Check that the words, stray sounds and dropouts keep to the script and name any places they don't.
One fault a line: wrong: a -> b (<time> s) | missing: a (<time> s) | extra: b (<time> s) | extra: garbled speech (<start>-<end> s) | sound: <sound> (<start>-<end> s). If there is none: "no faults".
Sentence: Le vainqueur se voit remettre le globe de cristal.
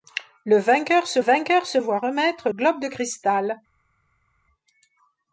extra: vainqueur se (1.2 s)
missing: le (2.5 s)